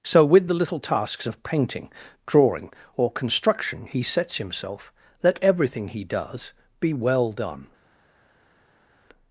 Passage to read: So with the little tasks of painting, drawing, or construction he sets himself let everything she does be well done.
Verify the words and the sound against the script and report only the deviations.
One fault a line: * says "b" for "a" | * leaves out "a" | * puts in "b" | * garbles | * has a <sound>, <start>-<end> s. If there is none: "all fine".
* says "he" for "she"